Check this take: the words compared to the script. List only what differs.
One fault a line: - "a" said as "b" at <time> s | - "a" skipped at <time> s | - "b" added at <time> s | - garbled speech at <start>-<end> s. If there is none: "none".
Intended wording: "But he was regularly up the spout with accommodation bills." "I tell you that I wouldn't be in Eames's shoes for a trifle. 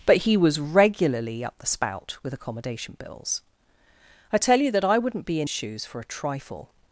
- "Eames's" skipped at 5.5 s